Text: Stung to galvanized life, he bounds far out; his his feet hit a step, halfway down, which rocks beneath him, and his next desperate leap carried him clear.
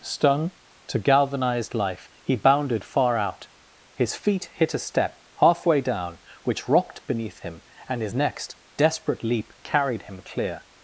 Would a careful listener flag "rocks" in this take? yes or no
yes